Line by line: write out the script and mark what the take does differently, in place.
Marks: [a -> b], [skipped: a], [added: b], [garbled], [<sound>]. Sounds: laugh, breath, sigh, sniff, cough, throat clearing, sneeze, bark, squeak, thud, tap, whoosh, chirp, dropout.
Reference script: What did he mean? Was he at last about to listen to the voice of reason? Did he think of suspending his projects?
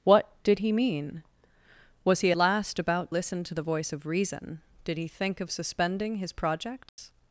What did he mean? Was he [skipped: at] last about [skipped: to] listen to the voice of reason? Did he think of suspending his projects? [dropout]